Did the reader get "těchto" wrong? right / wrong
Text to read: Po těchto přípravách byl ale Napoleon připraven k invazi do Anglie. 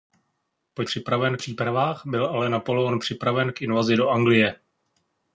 wrong